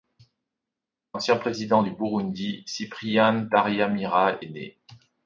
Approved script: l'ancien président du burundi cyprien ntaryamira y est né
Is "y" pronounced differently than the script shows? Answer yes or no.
yes